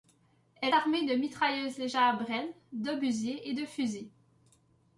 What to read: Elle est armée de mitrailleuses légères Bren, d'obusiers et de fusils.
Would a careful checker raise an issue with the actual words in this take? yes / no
yes